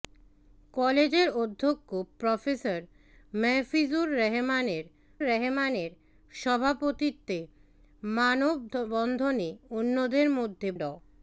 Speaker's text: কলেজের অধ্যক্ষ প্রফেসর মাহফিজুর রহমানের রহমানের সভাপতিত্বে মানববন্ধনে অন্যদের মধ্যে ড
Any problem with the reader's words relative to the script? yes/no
no